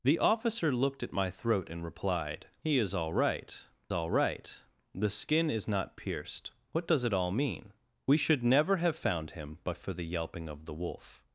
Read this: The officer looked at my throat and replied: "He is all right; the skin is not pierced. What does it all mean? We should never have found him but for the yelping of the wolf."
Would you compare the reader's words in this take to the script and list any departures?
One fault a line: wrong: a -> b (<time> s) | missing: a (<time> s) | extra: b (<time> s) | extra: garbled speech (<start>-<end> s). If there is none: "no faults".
extra: all right (3.9 s)